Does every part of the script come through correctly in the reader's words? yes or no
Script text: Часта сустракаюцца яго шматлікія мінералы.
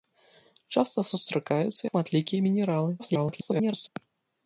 no